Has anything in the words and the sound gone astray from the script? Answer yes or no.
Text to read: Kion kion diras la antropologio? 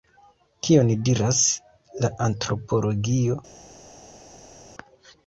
yes